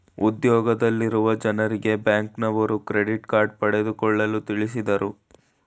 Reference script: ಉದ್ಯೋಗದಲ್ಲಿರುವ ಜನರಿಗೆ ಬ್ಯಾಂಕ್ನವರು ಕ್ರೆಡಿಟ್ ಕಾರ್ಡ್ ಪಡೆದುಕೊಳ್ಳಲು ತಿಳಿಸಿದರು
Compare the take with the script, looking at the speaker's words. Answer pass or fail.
pass